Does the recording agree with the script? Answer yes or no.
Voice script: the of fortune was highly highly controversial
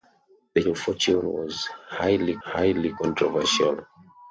yes